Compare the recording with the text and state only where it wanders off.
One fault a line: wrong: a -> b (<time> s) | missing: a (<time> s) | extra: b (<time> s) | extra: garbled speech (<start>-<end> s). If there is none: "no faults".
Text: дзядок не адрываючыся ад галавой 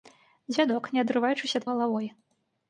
no faults